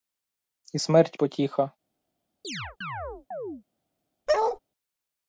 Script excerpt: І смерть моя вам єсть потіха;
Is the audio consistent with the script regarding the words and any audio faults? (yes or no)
no